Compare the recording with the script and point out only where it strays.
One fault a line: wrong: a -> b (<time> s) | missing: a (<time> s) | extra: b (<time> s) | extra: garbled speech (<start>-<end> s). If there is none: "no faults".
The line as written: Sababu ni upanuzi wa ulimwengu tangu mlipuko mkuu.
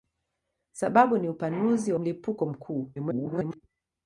missing: ulimwengu tangu (2.0 s)
extra: garbled speech (2.9-3.6 s)